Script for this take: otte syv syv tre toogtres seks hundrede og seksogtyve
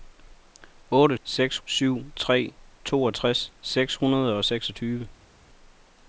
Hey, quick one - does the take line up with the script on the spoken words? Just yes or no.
no